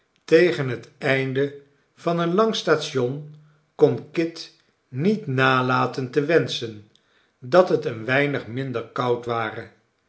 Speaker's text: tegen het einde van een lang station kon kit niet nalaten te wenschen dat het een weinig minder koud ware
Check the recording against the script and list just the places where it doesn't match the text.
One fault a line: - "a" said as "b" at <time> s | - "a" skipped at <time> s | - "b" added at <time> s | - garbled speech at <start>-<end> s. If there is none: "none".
none